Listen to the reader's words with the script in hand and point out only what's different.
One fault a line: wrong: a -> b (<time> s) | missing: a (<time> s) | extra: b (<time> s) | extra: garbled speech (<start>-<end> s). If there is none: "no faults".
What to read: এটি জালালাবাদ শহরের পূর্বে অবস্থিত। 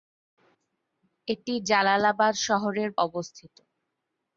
missing: পূর্বে (2.9 s)